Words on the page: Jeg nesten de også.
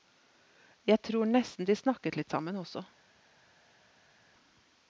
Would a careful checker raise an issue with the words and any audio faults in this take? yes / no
yes